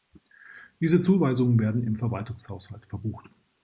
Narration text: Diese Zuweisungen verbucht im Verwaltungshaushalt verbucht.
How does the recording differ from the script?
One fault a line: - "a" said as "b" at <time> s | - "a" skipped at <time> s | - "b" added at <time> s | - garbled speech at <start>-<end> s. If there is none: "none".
- "verbucht" said as "werden" at 1.6 s